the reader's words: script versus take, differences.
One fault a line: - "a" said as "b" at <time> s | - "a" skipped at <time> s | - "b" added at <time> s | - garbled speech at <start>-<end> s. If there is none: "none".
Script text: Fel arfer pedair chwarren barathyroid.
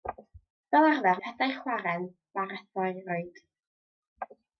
none